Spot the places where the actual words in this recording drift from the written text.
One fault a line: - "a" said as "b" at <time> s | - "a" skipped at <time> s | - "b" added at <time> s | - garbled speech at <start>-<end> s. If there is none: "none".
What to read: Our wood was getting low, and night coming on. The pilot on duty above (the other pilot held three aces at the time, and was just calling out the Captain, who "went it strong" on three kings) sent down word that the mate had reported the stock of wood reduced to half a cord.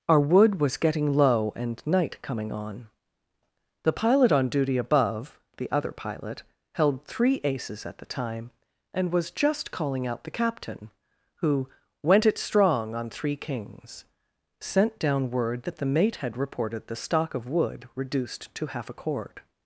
none